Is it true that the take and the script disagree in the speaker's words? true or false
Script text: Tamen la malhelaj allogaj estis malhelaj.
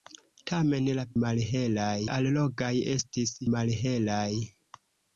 false